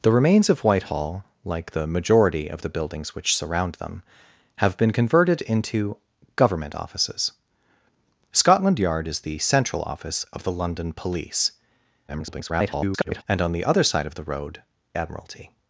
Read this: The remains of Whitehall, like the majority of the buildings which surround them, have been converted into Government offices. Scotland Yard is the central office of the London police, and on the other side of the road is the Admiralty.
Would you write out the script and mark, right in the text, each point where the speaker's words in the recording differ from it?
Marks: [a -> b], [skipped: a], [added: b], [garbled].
The remains of Whitehall, like the majority of the buildings which surround them, have been converted into Government offices. Scotland Yard is the central office of the London police, [garbled] and on the other side of the road [skipped: is the] Admiralty.